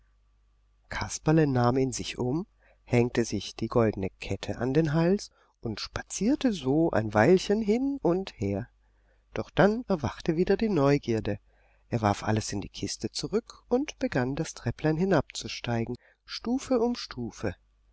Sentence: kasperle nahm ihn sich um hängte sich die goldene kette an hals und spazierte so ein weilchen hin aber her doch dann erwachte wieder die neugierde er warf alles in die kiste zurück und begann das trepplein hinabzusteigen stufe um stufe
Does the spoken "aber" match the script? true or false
false